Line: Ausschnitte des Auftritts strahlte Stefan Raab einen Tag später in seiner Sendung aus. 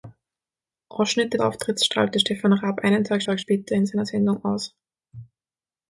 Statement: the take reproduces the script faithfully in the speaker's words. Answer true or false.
false